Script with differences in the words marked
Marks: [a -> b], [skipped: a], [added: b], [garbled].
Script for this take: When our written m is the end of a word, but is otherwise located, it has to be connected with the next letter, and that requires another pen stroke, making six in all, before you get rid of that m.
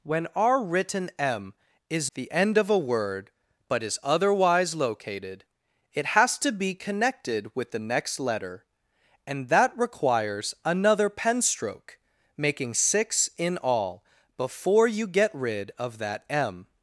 When our written m is the end of a word, but is otherwise located, it has to be connected with the next letter, and that requires another pen stroke, making six in all, before you get rid of that m.